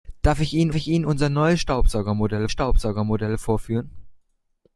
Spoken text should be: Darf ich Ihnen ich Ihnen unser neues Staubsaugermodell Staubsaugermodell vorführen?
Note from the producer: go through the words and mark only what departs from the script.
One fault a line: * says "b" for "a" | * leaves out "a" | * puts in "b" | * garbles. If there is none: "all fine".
all fine